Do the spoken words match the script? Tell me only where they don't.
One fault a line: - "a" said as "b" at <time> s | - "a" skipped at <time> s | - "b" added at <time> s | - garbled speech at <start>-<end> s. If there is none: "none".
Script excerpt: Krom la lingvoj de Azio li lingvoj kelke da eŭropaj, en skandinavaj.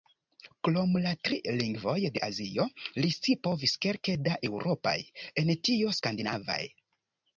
- "tri" added at 1.3 s
- "lingvoj" said as "scipovis" at 3.2 s
- "tio" added at 5.7 s